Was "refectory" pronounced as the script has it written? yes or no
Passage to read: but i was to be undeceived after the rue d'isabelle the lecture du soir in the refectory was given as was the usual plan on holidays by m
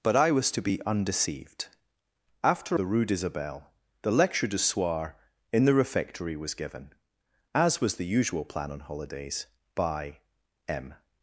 yes